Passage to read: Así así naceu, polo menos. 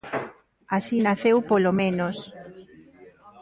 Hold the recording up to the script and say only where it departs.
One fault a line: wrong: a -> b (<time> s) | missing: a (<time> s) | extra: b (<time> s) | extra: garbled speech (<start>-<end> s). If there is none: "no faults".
missing: así (0.9 s)